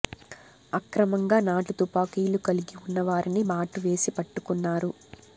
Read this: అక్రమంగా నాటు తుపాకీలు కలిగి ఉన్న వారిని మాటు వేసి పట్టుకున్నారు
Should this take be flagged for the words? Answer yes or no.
no